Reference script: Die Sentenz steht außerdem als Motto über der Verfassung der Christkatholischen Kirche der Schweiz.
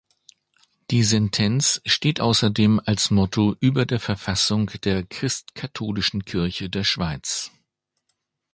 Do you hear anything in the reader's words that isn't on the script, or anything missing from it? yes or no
no